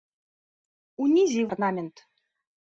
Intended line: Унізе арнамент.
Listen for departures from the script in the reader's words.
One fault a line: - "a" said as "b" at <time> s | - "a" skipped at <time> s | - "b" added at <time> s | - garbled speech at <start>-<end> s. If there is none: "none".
none